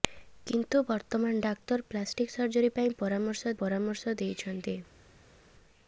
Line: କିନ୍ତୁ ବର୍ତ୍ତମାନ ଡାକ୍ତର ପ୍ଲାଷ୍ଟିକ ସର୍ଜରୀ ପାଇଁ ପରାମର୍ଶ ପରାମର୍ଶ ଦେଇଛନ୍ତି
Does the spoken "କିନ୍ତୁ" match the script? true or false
true